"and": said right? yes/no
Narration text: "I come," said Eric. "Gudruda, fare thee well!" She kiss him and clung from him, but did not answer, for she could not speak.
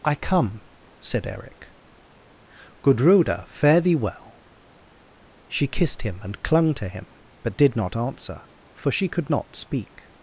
yes